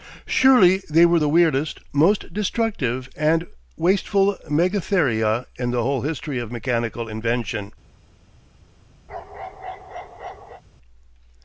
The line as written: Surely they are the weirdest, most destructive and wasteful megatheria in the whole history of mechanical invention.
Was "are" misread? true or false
true